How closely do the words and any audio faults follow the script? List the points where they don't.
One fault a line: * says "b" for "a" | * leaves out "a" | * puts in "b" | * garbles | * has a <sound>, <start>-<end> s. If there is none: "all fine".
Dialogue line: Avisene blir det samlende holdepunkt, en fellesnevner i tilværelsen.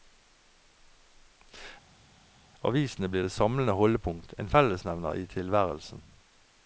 all fine